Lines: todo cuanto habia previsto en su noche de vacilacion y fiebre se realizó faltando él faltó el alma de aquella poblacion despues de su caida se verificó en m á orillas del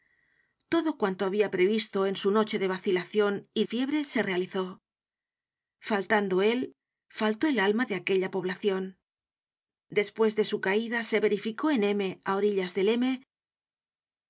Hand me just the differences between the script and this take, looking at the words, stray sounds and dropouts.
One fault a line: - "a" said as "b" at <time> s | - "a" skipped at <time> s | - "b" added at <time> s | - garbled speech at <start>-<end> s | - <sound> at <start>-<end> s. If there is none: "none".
none